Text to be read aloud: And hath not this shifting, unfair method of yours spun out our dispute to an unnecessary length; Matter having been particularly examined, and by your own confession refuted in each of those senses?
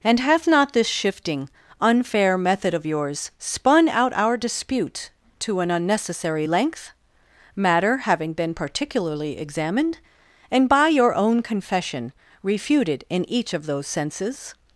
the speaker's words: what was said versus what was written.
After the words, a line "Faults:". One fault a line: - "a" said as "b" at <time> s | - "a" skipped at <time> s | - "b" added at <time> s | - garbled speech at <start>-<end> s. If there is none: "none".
And hath not this shifting, unfair method of yours spun out our dispute to an unnecessary length; Matter having been particularly examined, and by your own confession refuted in each of those senses?
Faults:
none